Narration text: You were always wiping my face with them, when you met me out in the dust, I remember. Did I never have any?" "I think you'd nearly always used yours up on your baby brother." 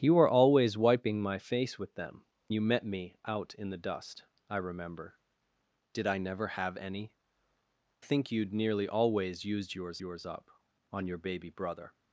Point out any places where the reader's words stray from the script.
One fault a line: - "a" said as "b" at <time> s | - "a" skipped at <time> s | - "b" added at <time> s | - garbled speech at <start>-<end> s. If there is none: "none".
- "when" skipped at 2.2 s
- "I" skipped at 7.1 s
- "yours" added at 10.0 s